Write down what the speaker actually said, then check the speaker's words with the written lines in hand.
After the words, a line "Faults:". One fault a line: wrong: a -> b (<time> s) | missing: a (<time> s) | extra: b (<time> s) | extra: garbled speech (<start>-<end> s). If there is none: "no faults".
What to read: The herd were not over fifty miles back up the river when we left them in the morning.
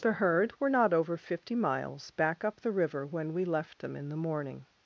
The herd were not over fifty miles back up the river when we left them in the morning.
Faults:
no faults